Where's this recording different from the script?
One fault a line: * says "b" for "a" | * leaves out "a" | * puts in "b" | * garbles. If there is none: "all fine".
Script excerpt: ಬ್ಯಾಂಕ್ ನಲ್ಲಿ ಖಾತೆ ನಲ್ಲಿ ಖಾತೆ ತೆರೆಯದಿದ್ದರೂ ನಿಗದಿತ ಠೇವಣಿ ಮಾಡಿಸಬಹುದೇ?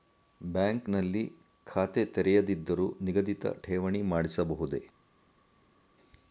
* leaves out "ನಲ್ಲಿ ಖಾತೆ"